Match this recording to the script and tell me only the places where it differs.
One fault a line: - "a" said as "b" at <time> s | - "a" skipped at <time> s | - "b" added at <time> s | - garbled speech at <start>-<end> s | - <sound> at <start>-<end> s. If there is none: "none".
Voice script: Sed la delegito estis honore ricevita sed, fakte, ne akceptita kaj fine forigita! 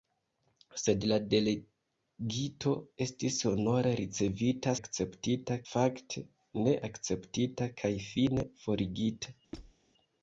- "sed" said as "akceptita" at 4.8 s
- squeak at 9.5-9.7 s